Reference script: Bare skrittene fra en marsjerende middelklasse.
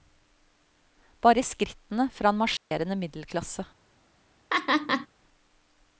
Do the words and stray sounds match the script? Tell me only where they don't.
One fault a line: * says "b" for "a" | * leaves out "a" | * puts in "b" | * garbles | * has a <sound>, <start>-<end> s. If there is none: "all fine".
* has a dropout, 2.6-2.7 s
* has a laugh, 4.5-5.1 s